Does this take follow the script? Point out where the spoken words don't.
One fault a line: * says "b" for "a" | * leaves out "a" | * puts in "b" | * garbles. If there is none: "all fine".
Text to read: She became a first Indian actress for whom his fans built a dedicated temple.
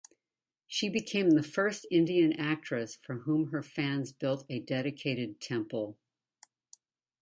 * says "the" for "a"
* says "her" for "his"